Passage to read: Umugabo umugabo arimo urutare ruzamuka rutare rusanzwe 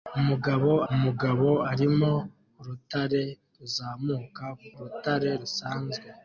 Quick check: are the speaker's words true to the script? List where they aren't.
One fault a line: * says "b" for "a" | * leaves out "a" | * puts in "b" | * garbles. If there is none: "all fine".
all fine